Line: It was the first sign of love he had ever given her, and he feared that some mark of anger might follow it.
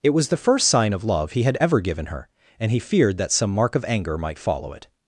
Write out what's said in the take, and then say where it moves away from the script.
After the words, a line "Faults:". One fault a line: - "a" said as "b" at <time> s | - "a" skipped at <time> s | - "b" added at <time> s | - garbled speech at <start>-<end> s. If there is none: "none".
It was the first sign of love he had ever given her, and he feared that some mark of anger might follow it.
Faults:
none